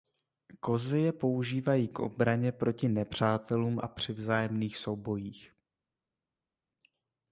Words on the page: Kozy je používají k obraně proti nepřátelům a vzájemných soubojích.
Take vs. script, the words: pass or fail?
fail